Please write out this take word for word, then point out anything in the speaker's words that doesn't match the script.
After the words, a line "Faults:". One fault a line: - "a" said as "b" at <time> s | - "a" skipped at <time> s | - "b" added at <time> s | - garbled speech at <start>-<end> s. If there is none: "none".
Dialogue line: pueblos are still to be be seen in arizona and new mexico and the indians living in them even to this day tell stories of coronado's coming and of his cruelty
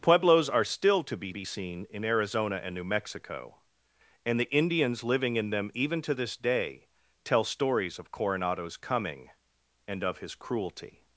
pueblos are still to be be seen in arizona and new mexico and the indians living in them even to this day tell stories of coronado's coming and of his cruelty
Faults:
none